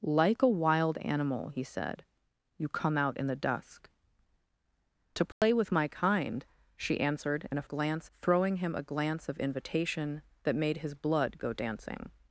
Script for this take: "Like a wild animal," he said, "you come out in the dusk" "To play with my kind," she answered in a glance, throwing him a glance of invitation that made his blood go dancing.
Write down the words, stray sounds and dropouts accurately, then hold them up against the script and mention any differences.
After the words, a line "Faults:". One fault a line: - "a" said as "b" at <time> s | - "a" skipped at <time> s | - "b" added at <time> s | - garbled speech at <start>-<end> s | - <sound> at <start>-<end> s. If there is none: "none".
"Like a wild animal," he said, "you come out in the dusk" "To play with my kind," she answered in a glance, throwing him a glance of invitation that made his blood go dancing.
Faults:
- dropout at 5.3-5.4 s